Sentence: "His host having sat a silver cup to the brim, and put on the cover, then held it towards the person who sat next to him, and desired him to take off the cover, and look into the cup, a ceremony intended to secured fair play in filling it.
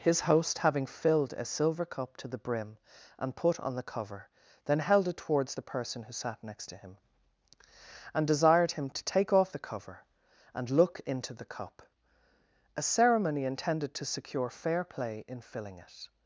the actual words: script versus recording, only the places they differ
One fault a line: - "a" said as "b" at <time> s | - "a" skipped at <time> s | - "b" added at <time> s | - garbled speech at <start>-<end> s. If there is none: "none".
- "sat" said as "filled" at 0.9 s
- "secured" said as "secure" at 14.0 s